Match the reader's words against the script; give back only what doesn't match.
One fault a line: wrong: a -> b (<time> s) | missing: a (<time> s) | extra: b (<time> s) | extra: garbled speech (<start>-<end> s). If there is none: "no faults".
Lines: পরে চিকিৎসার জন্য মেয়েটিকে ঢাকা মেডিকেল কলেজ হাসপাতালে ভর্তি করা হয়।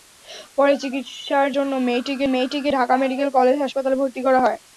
extra: মেয়েটিকে (2.3 s)